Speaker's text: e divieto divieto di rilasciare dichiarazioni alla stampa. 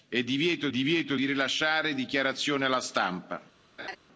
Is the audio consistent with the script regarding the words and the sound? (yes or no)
no